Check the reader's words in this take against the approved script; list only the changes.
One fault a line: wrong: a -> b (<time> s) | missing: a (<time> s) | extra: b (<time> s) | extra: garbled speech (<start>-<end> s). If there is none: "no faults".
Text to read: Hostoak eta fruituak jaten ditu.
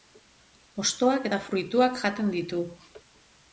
no faults